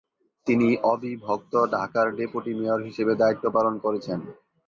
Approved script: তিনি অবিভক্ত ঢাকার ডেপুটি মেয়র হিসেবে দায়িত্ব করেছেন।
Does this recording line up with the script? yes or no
no